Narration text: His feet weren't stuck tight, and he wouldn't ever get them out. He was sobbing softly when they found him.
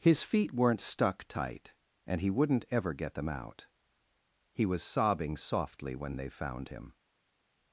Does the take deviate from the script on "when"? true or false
false